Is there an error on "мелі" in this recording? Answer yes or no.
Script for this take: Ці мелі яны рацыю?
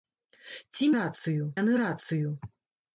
yes